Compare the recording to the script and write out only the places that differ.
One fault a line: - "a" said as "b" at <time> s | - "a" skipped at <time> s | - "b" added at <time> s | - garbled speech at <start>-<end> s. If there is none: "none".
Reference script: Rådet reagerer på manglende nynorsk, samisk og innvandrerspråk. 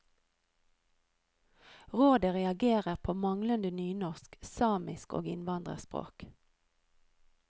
none